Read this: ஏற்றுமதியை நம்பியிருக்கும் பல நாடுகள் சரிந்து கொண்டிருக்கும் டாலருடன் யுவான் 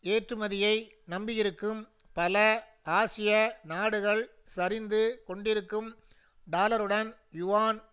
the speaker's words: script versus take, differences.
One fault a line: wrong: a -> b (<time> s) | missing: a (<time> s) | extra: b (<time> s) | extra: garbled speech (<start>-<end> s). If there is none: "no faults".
extra: ஆசிய (2.9 s)